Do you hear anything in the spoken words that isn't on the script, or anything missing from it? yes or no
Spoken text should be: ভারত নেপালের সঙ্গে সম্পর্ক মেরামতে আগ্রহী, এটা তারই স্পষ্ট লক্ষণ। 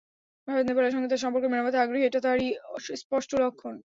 yes